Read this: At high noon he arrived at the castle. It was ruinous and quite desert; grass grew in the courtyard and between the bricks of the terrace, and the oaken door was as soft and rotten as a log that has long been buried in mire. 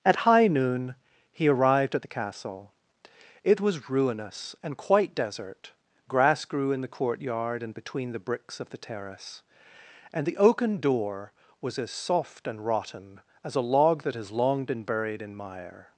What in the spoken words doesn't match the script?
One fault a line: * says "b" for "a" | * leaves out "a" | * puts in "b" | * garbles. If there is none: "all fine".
all fine